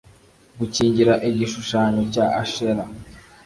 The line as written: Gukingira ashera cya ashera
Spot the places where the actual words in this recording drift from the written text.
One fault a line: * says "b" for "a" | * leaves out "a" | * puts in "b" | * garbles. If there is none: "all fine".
* says "igishushanyo" for "ashera"